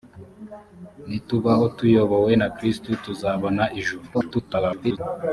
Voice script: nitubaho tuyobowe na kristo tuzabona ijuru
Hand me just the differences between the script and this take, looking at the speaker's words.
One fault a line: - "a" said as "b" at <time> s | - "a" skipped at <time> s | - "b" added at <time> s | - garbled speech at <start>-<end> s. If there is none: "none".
- garbled speech at 4.1-5.0 s